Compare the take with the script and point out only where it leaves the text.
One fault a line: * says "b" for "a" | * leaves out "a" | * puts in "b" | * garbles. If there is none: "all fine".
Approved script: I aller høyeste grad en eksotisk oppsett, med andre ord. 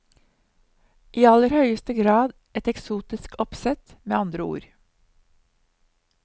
* says "et" for "en"